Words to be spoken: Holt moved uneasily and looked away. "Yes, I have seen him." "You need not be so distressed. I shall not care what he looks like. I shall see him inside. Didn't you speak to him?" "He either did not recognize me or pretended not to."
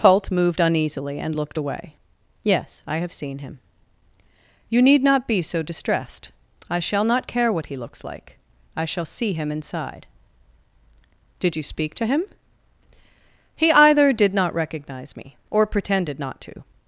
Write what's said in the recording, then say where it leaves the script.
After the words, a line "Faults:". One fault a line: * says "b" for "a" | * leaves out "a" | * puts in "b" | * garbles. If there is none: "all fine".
Holt moved uneasily and looked away. "Yes, I have seen him." "You need not be so distressed. I shall not care what he looks like. I shall see him inside. Did you speak to him?" "He either did not recognize me or pretended not to."
Faults:
* says "Did" for "Didn't"